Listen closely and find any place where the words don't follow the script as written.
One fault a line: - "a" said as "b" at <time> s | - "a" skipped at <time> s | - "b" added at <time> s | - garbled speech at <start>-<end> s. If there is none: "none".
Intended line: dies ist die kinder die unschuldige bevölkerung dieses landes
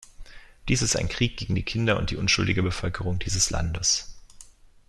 - "ein krieg gegen" added at 0.9 s
- "und" added at 2.0 s